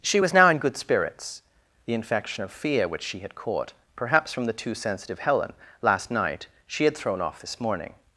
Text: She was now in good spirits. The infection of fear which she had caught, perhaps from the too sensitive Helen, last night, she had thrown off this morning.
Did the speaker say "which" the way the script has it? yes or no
yes